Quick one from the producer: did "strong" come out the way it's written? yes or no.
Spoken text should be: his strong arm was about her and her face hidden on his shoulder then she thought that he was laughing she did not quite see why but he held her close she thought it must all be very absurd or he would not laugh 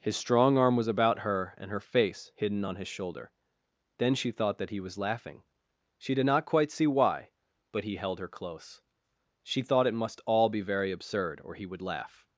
yes